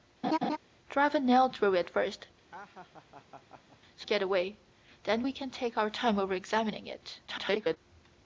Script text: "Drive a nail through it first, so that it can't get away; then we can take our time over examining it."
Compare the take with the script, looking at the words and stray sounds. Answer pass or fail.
fail